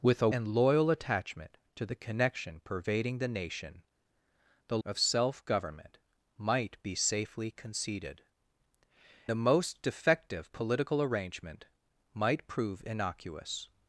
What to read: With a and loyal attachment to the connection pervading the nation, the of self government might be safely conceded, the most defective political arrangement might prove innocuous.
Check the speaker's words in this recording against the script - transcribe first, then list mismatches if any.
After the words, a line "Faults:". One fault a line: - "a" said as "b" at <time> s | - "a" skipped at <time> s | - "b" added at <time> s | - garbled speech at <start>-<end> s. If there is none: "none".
With a and loyal attachment to the connection pervading the nation, the of self government might be safely conceded, the most defective political arrangement might prove innocuous.
Faults:
none